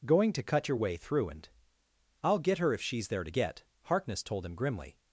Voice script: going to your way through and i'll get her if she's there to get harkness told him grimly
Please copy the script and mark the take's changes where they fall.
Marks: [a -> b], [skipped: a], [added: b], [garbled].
going to [added: cut] your way through and i'll get her if she's there to get harkness told him grimly